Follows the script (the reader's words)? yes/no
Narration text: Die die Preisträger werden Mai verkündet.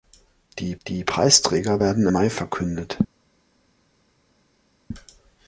yes